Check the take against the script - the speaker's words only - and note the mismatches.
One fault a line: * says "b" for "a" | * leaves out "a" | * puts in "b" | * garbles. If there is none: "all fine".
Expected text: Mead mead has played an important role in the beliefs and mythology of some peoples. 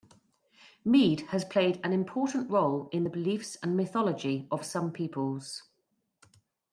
* leaves out "mead"